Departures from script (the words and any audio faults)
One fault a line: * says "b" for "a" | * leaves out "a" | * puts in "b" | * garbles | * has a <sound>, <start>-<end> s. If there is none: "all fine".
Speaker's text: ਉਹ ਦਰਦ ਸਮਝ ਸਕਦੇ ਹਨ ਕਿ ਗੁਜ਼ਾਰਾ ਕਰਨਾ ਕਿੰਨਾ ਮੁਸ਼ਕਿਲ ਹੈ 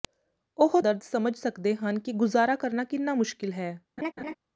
* has a laugh, 4.0-4.3 s